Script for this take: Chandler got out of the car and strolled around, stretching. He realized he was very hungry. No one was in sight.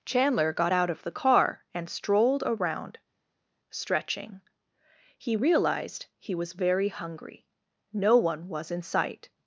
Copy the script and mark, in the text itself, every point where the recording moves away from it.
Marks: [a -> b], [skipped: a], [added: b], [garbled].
Chandler got out of the car and strolled around, stretching. He realized he was very hungry. No one was in sight.